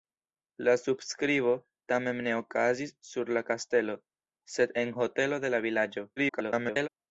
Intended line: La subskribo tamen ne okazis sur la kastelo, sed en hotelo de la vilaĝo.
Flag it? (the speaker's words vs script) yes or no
yes